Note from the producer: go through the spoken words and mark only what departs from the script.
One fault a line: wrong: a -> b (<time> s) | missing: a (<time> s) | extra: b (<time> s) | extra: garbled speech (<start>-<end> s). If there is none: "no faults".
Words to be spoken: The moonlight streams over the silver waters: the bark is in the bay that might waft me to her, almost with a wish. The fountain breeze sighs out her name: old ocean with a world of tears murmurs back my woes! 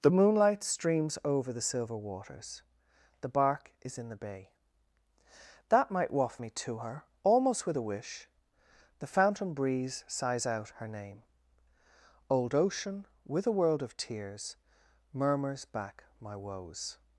no faults